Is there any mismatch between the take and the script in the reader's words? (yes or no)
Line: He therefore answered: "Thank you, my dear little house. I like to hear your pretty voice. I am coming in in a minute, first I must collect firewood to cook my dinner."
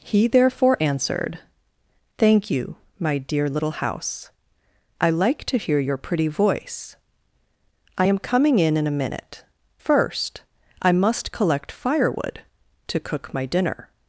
no